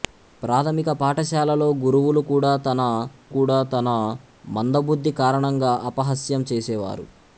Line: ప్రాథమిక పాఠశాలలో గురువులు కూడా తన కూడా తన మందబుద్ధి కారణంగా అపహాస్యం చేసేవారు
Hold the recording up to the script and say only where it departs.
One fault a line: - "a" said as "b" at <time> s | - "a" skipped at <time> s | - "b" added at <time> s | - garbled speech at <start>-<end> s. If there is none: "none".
none